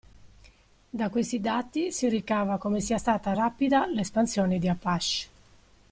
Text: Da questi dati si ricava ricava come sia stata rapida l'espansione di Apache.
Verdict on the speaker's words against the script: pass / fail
fail